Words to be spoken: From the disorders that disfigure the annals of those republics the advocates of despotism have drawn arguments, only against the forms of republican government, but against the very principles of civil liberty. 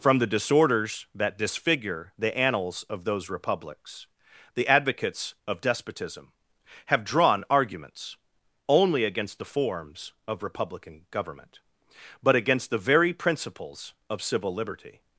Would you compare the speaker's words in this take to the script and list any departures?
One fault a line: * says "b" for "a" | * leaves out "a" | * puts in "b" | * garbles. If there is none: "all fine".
all fine